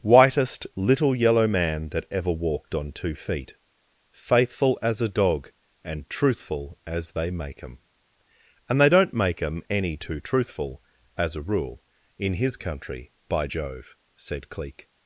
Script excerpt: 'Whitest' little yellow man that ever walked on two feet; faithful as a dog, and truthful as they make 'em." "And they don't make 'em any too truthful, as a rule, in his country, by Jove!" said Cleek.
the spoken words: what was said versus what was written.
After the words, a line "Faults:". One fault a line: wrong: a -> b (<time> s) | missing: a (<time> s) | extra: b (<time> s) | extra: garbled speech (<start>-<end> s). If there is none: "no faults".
'Whitest' little yellow man that ever walked on two feet; faithful as a dog, and truthful as they make 'em." "And they don't make 'em any too truthful, as a rule, in his country, by Jove!" said Cleek.
Faults:
no faults